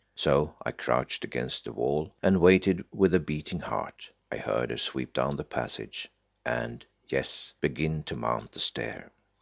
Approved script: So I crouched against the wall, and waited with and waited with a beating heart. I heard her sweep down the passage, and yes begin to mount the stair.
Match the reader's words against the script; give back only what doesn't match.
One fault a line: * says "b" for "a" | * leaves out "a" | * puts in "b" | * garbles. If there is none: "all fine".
* leaves out "and waited with"